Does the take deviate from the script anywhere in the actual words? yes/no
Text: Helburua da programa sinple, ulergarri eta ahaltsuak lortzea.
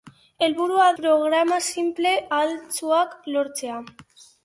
yes